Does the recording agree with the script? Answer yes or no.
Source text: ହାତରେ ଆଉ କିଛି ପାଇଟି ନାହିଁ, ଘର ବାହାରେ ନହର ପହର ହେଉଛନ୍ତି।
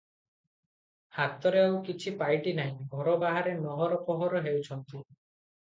yes